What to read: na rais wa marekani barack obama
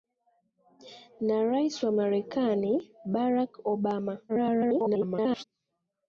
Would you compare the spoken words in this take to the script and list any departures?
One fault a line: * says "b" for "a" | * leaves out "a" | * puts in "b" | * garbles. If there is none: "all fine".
* garbles